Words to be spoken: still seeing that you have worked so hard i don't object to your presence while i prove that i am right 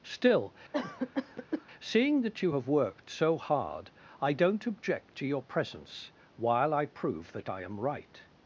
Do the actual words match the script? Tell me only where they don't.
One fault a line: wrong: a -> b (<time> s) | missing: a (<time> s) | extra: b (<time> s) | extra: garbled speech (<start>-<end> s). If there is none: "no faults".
no faults